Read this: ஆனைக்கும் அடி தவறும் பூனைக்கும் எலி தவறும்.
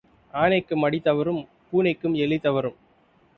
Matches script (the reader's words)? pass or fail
pass